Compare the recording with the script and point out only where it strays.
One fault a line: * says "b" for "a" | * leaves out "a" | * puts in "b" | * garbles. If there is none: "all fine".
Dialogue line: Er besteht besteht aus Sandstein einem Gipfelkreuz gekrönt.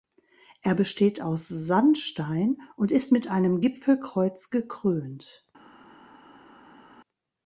* leaves out "besteht"
* puts in "und ist mit"